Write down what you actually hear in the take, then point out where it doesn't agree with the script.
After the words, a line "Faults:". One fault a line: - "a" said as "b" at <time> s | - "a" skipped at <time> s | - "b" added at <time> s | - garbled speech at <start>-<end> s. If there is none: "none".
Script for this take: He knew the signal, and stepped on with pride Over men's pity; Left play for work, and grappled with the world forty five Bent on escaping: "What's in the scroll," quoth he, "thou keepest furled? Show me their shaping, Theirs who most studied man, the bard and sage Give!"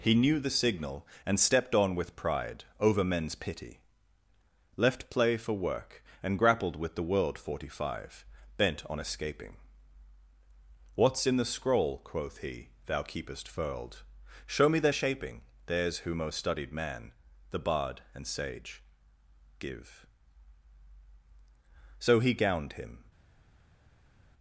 He knew the signal, and stepped on with pride Over men's pity; Left play for work, and grappled with the world forty five Bent on escaping: "What's in the scroll," quoth he, "thou keepest furled? Show me their shaping, Theirs who most studied man, the bard and sage Give!" So, he gowned him
Faults:
- "So he gowned him" added at 22.0 s